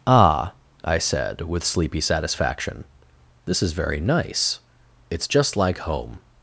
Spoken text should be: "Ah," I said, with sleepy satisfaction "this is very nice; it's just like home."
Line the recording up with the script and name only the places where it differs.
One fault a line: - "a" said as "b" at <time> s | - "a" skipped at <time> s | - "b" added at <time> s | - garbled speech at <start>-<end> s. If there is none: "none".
none